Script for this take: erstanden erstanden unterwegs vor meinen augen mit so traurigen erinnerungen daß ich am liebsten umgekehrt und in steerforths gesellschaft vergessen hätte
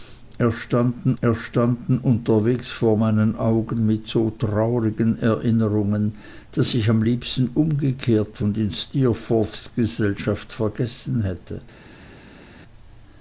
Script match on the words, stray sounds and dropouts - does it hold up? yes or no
yes